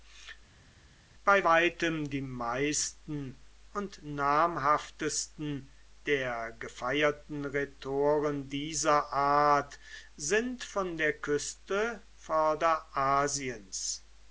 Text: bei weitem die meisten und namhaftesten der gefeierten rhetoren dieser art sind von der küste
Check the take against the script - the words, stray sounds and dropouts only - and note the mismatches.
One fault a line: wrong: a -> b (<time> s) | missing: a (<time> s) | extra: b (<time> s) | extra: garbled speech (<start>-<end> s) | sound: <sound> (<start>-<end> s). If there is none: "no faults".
no faults